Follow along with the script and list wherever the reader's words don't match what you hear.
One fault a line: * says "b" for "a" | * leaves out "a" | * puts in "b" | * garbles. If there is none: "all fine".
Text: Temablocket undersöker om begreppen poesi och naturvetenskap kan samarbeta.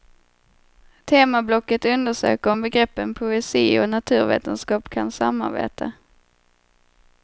all fine